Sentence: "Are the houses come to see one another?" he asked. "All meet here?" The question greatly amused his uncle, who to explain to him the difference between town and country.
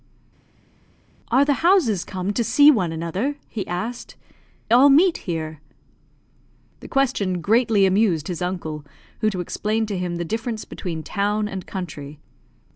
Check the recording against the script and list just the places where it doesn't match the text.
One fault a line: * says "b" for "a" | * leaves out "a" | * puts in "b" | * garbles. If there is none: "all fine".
all fine